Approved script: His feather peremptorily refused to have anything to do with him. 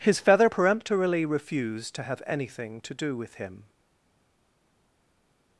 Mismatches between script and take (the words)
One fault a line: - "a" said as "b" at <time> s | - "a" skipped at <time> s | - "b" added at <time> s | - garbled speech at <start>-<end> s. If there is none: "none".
none